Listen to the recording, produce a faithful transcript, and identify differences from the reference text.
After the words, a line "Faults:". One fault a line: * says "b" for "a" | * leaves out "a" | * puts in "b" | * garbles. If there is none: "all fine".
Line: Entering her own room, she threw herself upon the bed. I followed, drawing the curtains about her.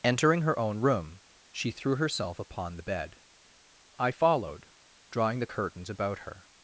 Entering her own room, she threw herself upon the bed. I followed, drawing the curtains about her.
Faults:
all fine